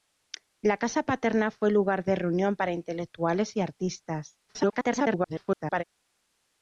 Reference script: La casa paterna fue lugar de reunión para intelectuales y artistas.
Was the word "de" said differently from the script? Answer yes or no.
no